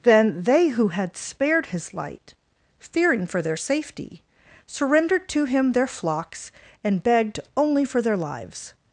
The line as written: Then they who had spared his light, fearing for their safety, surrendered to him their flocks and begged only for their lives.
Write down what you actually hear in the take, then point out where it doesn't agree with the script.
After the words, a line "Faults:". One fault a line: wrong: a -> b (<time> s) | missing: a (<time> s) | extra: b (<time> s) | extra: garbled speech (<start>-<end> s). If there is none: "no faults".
Then they who had spared his light, fearing for their safety, surrendered to him their flocks and begged only for their lives.
Faults:
no faults